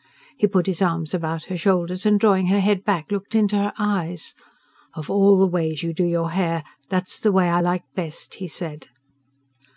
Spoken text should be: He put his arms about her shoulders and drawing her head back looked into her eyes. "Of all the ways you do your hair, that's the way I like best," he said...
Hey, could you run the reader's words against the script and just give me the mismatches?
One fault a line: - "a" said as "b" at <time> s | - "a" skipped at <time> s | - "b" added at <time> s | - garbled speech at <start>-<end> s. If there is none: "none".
none